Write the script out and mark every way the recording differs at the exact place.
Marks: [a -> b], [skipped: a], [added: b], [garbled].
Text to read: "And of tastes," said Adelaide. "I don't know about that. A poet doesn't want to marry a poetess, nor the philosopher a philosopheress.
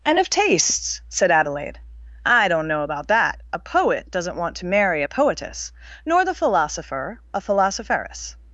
"And of tastes," said Adelaide. "I don't know about that. A poet doesn't want to marry a poetess, nor the philosopher a philosopheress.